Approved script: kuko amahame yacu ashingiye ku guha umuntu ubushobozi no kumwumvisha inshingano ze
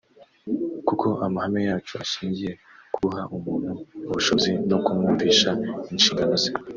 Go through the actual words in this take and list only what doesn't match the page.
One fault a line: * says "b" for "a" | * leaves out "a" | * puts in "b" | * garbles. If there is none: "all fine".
all fine